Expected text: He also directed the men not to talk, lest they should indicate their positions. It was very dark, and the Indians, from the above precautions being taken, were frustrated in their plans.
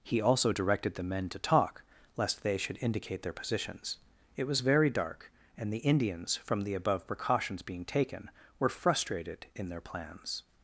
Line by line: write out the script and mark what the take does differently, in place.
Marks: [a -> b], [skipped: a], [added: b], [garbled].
He also directed the men [skipped: not] to talk, lest they should indicate their positions. It was very dark, and the Indians, from the above precautions being taken, were frustrated in their plans.